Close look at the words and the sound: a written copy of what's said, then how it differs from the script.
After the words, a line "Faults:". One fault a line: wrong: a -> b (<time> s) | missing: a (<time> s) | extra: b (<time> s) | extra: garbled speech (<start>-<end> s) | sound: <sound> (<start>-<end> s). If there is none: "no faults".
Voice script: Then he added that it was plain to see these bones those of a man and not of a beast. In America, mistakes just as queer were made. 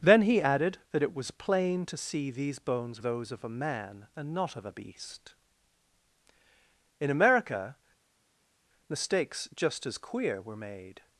Then he added that it was plain to see these bones those of a man and not of a beast. In America, mistakes just as queer were made.
Faults:
no faults